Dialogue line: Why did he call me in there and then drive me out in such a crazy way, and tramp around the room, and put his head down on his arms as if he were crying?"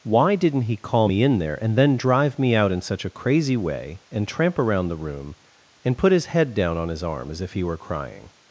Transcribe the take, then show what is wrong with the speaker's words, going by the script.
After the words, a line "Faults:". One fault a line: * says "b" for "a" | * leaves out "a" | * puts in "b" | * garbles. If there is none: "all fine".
Why didn't he call me in there and then drive me out in such a crazy way, and tramp around the room, and put his head down on his arm as if he were crying?"
Faults:
* says "didn't" for "did"
* says "arm" for "arms"